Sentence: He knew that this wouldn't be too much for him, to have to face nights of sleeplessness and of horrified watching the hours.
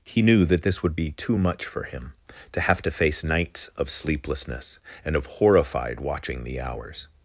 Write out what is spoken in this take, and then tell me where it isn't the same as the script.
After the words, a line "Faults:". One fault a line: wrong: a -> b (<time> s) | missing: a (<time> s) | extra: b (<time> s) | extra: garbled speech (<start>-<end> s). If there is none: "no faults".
He knew that this would be too much for him, to have to face nights of sleeplessness and of horrified watching the hours.
Faults:
wrong: wouldn't -> would (0.8 s)